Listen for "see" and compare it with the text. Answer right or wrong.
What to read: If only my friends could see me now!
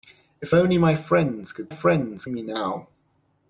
wrong